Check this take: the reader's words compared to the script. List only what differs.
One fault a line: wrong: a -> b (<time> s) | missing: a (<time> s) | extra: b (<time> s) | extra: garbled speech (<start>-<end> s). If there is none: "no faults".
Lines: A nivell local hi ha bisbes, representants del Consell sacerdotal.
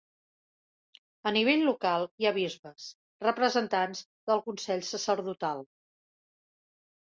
no faults